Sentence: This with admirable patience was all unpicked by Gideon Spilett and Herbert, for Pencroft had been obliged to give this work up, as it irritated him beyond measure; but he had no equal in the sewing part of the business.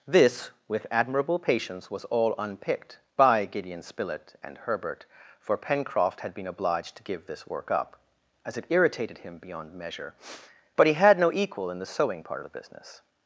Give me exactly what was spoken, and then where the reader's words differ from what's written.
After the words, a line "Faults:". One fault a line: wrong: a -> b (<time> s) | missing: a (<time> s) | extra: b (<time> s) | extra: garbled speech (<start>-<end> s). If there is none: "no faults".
This with admirable patience was all unpicked by Gideon Spilett and Herbert, for Pencroft had been obliged to give this work up, as it irritated him beyond measure; but he had no equal in the sewing part of the business.
Faults:
no faults